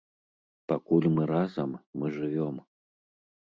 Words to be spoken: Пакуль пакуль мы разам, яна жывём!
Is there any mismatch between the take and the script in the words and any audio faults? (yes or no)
yes